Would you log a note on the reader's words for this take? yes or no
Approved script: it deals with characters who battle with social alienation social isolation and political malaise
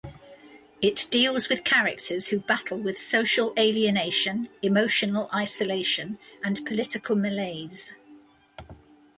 yes